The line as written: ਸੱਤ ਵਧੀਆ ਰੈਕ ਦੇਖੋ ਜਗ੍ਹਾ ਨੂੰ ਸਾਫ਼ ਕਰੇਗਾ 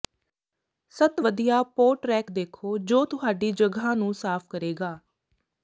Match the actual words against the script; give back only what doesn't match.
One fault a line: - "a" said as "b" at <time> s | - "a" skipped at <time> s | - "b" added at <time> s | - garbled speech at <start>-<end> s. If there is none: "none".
- "ਪੋਟ" added at 1.8 s
- "ਜੋ ਤੁਹਾਡੀ" added at 2.8 s